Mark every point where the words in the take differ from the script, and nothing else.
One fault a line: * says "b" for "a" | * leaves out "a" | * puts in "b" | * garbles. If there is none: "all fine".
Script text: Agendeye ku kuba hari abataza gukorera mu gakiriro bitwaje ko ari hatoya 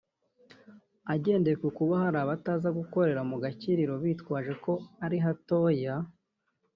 all fine